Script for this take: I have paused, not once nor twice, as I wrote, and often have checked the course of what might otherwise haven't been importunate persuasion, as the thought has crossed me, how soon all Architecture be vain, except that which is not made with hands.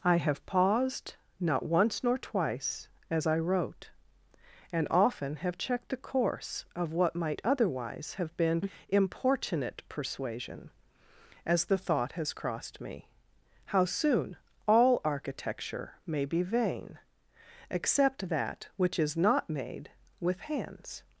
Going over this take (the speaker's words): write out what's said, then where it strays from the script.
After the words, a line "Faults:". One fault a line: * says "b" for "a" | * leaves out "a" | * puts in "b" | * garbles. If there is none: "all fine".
I have paused, not once nor twice, as I wrote, and often have checked the course of what might otherwise have been importunate persuasion, as the thought has crossed me, how soon all Architecture may be vain, except that which is not made with hands.
Faults:
* says "have" for "haven't"
* puts in "may"